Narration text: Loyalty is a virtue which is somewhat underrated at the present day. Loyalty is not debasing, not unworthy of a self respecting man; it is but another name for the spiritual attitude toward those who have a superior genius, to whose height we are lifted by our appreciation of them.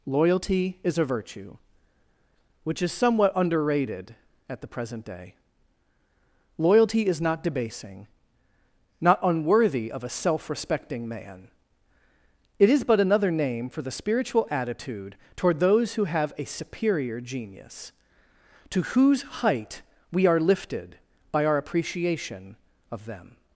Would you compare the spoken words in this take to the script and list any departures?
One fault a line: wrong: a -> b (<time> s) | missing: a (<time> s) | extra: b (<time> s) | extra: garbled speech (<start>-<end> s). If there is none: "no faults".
no faults